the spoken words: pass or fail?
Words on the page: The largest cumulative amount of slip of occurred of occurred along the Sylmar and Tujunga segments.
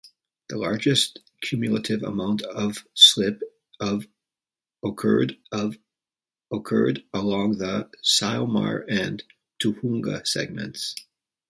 pass